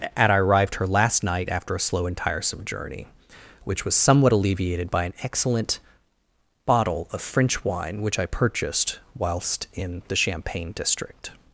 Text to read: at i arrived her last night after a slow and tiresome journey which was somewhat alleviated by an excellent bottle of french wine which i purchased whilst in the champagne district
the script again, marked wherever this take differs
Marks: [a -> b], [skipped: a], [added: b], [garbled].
at i arrived her last night after a slow and tiresome journey which was somewhat alleviated by an excellent bottle of french wine which i purchased whilst in the champagne district